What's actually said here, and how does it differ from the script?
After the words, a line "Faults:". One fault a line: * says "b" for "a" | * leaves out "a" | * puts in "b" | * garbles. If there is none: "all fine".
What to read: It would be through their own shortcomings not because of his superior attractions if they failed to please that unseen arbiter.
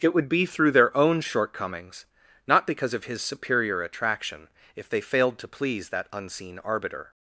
It would be through their own shortcomings not because of his superior attraction if they failed to please that unseen arbiter.
Faults:
* says "attraction" for "attractions"